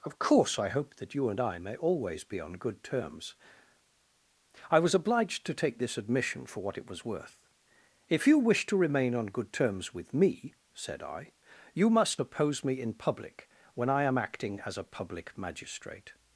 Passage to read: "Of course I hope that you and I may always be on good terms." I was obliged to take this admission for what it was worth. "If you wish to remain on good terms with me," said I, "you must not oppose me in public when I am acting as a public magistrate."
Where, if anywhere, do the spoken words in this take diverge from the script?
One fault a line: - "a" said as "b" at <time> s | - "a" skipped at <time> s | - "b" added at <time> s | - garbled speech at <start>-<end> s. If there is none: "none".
- "not" skipped at 12.2 s